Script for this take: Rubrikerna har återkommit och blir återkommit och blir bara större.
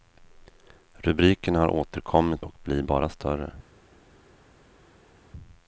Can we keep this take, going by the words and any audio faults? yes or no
no